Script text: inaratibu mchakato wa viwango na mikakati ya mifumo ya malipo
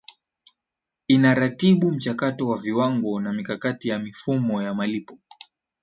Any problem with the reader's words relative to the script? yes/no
no